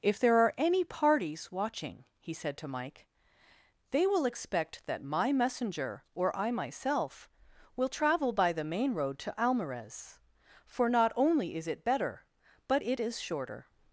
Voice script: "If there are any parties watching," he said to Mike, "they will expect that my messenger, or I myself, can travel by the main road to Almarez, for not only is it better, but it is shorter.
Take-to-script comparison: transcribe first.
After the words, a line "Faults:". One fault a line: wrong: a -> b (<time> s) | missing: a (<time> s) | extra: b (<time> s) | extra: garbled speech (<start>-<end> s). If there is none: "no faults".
"If there are any parties watching," he said to Mike, "they will expect that my messenger, or I myself, will travel by the main road to Almarez, for not only is it better, but it is shorter.
Faults:
wrong: can -> will (7.8 s)